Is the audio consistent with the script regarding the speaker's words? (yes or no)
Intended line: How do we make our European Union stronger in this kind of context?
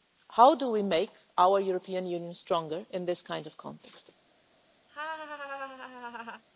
yes